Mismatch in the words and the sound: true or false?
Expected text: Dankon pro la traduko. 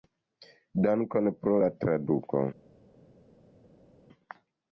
false